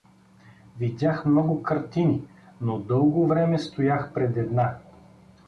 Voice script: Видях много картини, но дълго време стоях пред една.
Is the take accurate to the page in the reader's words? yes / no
yes